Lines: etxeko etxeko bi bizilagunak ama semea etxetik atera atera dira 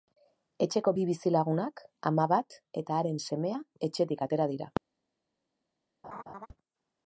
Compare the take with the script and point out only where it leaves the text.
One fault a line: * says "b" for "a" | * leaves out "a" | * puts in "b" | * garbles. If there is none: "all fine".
* leaves out "etxeko"
* puts in "bat eta haren"
* leaves out "atera"